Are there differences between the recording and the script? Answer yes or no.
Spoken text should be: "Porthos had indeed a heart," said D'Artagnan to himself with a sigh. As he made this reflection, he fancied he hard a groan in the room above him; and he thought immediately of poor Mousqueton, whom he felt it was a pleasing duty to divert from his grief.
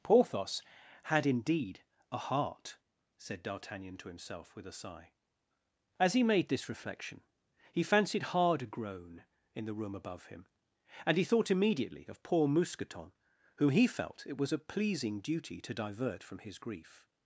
yes